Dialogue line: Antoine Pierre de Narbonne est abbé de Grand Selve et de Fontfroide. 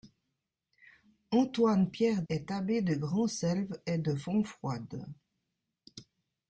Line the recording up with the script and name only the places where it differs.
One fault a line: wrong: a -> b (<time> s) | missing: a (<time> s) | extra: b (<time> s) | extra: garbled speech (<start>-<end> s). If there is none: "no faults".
missing: de Narbonne (2.2 s)